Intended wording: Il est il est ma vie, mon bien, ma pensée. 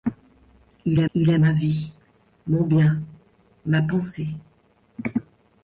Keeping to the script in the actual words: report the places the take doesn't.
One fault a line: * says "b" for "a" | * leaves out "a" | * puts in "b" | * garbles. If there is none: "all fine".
all fine